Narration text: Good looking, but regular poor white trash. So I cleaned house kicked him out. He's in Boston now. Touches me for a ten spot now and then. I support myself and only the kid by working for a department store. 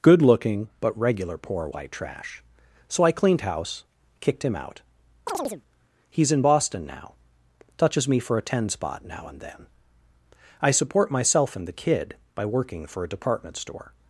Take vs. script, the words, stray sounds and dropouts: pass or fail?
fail